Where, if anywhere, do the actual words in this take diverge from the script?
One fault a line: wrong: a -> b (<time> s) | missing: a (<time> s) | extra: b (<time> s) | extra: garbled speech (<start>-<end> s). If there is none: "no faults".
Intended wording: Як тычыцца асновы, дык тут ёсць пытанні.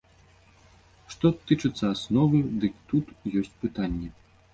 wrong: Як -> Што (1.1 s)